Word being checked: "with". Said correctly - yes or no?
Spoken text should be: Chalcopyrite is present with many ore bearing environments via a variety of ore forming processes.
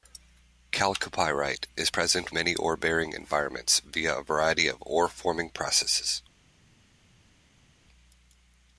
no